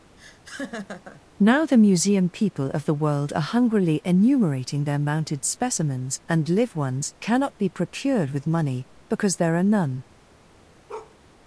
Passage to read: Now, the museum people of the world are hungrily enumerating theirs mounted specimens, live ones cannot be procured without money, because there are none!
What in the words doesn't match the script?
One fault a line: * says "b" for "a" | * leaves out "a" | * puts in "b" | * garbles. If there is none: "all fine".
* says "their" for "theirs"
* puts in "and"
* says "with" for "without"